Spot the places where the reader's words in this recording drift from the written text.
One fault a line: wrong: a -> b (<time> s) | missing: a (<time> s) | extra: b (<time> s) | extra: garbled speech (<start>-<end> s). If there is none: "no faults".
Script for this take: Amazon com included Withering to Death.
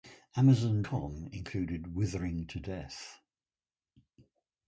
no faults